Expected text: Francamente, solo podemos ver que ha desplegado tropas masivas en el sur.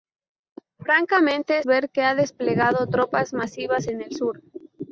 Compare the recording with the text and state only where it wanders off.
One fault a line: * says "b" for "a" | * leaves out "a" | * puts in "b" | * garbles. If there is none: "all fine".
* leaves out "solo podemos"